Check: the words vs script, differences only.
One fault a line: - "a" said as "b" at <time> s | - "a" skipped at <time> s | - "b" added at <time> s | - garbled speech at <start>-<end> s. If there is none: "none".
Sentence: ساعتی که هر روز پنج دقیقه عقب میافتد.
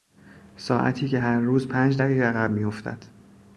none